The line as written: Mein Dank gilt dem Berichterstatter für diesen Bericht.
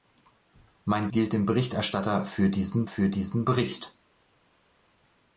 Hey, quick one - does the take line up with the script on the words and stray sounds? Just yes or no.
no